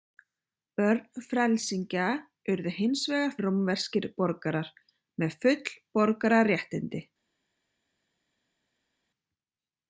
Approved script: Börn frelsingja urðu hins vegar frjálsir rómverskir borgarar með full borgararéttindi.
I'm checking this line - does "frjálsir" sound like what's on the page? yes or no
no